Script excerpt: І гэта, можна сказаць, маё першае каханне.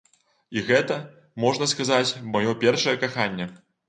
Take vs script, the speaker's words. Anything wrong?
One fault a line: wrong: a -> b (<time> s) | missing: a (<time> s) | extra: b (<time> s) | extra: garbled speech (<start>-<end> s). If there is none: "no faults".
no faults